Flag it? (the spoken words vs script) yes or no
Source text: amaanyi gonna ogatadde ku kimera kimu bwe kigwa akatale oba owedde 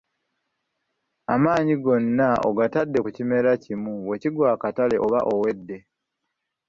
no